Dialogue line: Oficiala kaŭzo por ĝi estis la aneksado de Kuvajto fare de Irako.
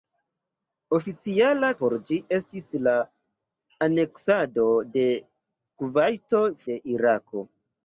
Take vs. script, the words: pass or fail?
fail